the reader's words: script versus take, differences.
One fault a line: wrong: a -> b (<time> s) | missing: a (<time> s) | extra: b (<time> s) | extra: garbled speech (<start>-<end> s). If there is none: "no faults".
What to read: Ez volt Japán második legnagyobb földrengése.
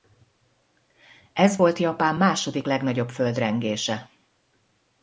no faults